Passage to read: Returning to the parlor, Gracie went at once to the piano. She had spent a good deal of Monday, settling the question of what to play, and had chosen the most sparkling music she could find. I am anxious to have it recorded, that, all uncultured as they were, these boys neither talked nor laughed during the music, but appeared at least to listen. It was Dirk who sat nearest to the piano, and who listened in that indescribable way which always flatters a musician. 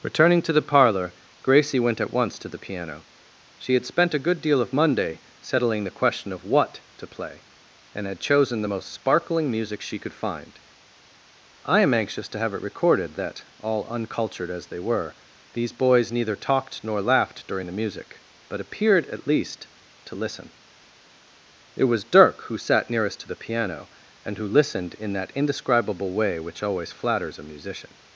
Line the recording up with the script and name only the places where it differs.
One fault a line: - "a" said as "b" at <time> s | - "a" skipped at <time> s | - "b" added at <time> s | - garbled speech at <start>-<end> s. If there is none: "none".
none